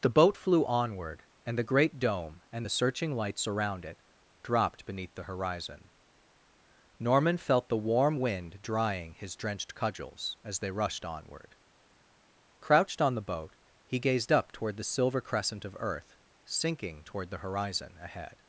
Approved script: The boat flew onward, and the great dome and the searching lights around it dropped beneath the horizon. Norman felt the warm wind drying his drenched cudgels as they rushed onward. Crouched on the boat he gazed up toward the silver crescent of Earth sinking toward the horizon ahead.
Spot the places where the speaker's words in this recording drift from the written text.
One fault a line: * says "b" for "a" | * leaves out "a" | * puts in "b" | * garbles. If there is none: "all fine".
all fine